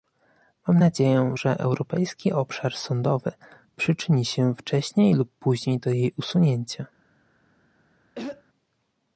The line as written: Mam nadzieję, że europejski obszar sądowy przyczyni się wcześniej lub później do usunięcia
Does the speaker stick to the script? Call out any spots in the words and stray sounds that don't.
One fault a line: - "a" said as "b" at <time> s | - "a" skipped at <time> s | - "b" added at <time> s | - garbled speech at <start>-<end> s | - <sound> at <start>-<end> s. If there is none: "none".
- "jej" added at 5.9 s
- throat clearing at 8.2-8.4 s